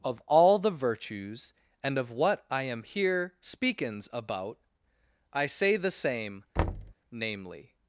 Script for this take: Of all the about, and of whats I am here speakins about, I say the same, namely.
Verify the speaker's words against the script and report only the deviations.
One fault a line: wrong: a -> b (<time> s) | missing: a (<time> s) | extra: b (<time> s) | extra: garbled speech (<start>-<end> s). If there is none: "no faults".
wrong: about -> virtues (0.7 s)
wrong: whats -> what (2.1 s)